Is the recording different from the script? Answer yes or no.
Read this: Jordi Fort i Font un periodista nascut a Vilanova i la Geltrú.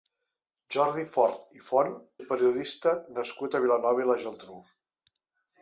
no